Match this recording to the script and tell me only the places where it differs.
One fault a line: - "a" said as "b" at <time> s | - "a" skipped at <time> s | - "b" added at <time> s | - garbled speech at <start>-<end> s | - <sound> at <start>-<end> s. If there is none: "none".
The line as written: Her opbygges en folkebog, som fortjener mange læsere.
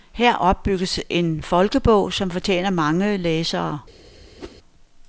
- whoosh at 4.4-4.6 s